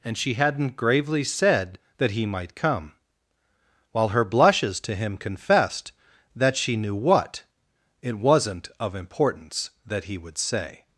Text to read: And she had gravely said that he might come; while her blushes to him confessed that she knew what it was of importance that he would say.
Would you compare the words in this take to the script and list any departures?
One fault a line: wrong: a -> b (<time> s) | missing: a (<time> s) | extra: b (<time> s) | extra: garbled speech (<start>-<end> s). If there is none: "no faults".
wrong: had -> hadn't (0.3 s)
wrong: was -> wasn't (8.2 s)